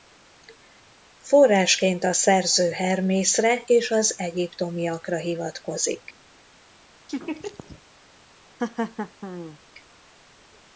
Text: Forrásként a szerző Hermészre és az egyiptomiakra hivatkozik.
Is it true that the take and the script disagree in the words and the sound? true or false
true